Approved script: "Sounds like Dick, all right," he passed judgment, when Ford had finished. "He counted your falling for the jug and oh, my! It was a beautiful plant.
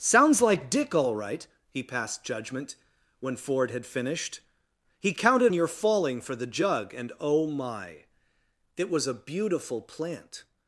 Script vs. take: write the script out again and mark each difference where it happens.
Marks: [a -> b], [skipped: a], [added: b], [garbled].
"Sounds like Dick, all right," he passed judgment, when Ford had finished. "He counted your falling for the jug and oh, my! It was a beautiful plant.